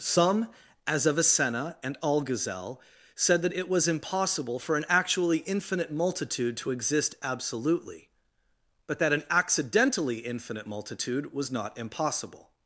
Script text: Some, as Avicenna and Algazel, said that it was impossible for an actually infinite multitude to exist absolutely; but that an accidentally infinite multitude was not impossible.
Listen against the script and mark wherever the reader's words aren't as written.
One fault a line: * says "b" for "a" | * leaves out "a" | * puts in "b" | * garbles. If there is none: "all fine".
all fine